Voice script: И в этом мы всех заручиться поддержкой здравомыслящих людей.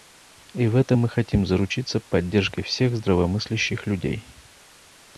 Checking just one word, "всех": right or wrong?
wrong